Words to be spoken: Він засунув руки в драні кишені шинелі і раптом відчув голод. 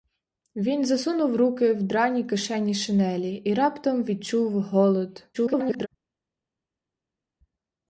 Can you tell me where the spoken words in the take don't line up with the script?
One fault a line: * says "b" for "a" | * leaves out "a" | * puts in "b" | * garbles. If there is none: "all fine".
* garbles